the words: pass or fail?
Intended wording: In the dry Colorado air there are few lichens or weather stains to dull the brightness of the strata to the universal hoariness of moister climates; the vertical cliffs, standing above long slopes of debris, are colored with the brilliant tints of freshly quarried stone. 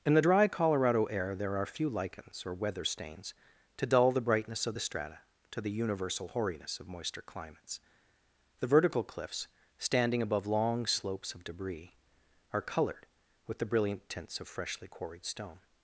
pass